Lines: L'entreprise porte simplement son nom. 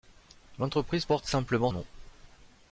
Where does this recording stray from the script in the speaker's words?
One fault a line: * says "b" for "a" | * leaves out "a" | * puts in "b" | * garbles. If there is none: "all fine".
* leaves out "son"